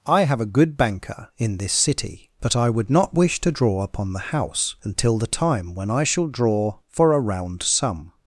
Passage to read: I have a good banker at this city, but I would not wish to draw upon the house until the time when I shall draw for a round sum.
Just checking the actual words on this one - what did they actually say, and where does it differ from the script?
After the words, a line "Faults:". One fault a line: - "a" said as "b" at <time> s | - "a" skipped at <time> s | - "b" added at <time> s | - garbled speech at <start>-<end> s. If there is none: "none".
I have a good banker in this city, but I would not wish to draw upon the house until the time when I shall draw for a round sum.
Faults:
- "at" said as "in" at 1.4 s